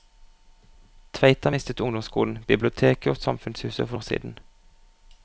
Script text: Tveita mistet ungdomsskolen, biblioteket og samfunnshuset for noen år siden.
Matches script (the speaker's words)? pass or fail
fail